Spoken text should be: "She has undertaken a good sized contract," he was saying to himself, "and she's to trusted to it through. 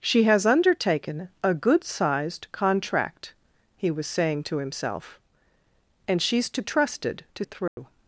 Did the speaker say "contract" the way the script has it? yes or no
yes